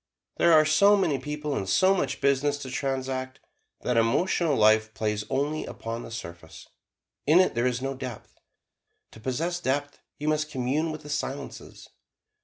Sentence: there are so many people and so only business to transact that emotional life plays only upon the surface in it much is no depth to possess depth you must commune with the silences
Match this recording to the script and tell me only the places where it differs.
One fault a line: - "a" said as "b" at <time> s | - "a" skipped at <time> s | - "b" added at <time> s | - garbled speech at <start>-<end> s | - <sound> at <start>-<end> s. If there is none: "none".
- "only" said as "much" at 1.9 s
- "much" said as "there" at 7.5 s